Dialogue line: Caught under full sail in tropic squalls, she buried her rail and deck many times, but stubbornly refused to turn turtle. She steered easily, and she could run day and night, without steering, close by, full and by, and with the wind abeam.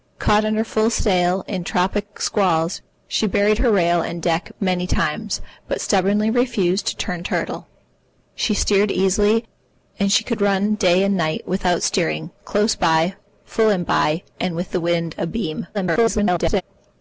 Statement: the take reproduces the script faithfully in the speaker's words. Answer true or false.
false